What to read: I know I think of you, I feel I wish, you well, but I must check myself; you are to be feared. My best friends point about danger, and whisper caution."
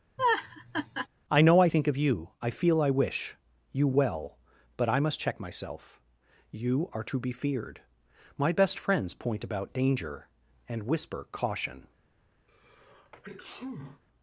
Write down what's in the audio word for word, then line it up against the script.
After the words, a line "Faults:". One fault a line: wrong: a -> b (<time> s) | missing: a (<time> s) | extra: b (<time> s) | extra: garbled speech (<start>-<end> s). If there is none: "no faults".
I know I think of you, I feel I wish, you well, but I must check myself; you are to be feared. My best friends point about danger, and whisper caution."
Faults:
no faults